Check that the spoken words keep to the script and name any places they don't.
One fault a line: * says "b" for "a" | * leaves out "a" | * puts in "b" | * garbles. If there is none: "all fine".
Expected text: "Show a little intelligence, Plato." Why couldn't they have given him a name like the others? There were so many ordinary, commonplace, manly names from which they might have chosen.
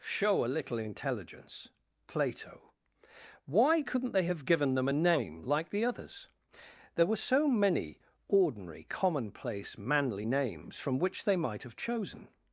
* says "them" for "him"